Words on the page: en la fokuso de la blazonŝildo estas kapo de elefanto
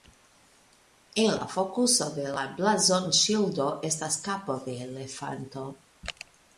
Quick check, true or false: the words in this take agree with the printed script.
true